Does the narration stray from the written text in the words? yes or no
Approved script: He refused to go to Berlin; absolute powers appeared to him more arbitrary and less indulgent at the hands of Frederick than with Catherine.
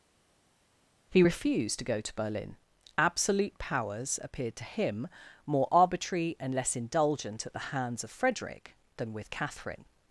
no